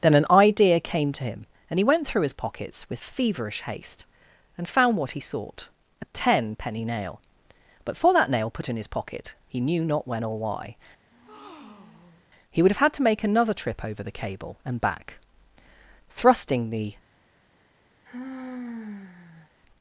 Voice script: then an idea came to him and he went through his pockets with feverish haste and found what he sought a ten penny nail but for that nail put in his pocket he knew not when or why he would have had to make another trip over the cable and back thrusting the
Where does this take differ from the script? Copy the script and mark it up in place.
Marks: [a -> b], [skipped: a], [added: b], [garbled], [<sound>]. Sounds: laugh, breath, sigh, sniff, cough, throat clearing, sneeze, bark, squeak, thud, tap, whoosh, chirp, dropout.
then an idea came to him and he went through his pockets with feverish haste and found what he sought a ten penny nail but for that nail put in his pocket he knew not when or why [breath] he would have had to make another trip over the cable and back thrusting the [sigh]